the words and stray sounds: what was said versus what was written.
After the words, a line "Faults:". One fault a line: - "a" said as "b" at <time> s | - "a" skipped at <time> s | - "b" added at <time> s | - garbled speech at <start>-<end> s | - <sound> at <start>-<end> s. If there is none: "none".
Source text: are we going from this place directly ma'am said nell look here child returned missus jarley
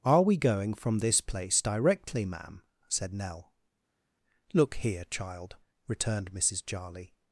are we going from this place directly ma'am said nell look here child returned missus jarley
Faults:
none